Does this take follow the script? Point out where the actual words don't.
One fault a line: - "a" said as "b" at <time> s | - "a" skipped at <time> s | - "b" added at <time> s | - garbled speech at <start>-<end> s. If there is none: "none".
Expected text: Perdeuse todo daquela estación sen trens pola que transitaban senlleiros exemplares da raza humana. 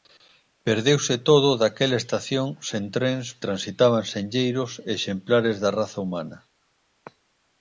- "pola que" skipped at 3.2 s